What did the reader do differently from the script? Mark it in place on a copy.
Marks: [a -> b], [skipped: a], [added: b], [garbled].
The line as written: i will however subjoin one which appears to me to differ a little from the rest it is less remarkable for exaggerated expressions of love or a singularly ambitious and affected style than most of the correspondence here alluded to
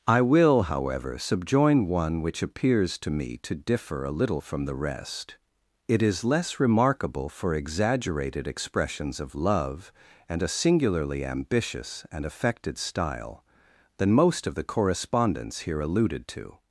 i will however subjoin one which appears to me to differ a little from the rest it is less remarkable for exaggerated expressions of love [or -> and] a singularly ambitious and affected style than most of the correspondence here alluded to